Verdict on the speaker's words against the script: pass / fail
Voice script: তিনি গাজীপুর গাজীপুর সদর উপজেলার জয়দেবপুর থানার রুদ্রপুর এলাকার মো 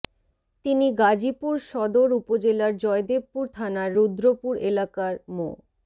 fail